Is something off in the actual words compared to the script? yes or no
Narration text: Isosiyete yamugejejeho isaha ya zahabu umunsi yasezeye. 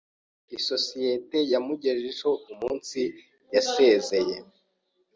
yes